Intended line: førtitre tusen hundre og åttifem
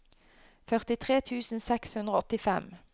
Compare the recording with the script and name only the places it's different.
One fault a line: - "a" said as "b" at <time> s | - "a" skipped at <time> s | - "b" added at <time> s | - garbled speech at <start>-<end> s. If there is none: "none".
- "seks" added at 1.7 s